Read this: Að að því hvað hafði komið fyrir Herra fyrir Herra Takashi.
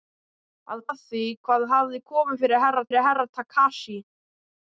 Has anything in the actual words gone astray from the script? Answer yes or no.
no